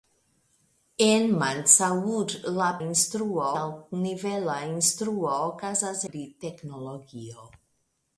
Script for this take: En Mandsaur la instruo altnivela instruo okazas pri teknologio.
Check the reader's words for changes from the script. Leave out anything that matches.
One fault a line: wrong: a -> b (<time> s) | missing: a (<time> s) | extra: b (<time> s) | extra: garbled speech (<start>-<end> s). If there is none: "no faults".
no faults